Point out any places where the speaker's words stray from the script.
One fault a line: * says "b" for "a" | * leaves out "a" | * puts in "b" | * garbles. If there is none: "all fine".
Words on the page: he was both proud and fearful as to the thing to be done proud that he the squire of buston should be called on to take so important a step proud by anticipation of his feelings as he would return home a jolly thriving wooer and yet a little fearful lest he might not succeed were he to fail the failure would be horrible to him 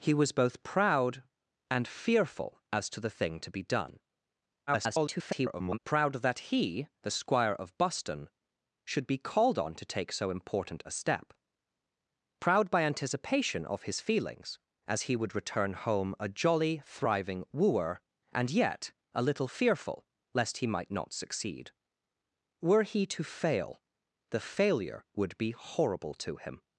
* garbles